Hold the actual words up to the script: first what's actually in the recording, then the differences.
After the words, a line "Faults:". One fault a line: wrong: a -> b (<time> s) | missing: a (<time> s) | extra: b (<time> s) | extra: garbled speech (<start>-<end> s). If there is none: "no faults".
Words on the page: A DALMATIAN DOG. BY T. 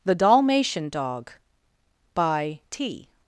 THE DALMATIAN DOG. BY T.
Faults:
wrong: A -> THE (0.0 s)